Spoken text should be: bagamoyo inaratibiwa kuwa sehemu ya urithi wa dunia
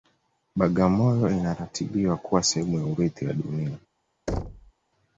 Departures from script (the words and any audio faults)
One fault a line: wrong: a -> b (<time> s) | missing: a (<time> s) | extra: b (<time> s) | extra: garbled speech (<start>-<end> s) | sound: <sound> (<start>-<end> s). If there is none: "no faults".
sound: thud (4.3-4.7 s)